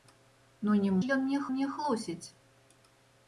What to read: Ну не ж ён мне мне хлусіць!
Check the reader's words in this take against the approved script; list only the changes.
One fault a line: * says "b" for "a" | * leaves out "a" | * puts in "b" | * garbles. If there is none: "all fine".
all fine